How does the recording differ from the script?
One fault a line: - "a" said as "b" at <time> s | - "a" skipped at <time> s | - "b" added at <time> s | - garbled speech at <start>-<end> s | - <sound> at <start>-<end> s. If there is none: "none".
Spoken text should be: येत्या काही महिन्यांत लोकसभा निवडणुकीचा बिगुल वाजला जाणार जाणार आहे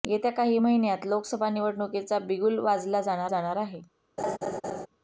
- laugh at 4.2-4.9 s